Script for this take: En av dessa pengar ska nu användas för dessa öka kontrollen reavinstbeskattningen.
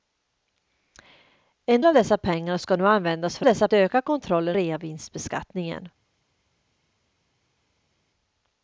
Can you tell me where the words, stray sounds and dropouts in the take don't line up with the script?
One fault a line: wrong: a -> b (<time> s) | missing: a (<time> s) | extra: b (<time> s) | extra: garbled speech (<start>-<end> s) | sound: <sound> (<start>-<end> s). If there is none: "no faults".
no faults